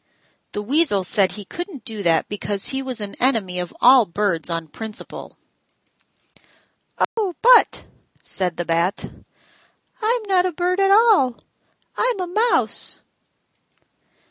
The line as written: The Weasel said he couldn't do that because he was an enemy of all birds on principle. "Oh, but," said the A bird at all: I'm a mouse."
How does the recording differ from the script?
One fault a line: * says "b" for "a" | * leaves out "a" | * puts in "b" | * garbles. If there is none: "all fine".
* puts in "Bat I'm not"